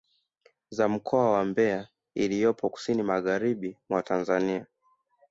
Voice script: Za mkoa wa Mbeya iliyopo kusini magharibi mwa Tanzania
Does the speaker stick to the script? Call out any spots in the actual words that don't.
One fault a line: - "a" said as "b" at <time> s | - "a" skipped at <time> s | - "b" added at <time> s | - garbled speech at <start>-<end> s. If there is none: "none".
none